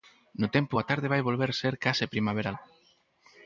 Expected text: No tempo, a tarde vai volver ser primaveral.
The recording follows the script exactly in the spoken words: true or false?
false